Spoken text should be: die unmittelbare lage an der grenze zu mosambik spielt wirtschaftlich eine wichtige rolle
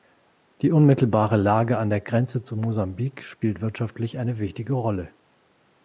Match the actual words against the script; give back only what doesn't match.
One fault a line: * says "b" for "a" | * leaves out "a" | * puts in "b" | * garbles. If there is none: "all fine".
all fine